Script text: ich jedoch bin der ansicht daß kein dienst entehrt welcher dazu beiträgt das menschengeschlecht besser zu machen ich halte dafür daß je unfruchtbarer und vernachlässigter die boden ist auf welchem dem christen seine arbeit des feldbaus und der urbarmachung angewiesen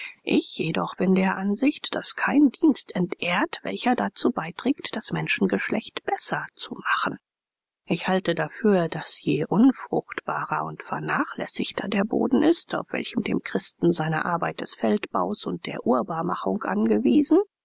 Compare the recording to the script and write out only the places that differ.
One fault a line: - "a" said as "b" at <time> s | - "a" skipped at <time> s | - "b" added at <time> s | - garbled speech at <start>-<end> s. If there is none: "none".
- "die" said as "der" at 11.9 s